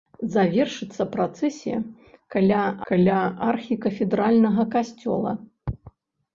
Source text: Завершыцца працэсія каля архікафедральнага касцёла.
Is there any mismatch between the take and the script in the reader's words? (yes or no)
yes